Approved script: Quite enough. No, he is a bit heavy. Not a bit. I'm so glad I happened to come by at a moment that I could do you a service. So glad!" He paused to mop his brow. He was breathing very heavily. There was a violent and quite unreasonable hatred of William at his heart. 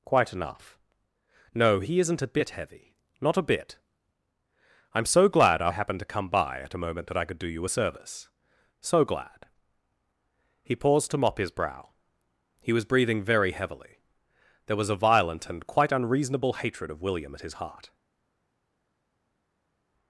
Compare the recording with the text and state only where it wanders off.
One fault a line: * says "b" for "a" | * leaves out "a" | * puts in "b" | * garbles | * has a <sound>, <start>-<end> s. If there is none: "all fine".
* says "isn't" for "is"